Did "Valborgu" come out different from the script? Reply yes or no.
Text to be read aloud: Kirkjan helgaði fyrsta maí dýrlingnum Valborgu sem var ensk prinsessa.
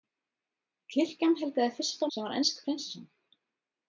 yes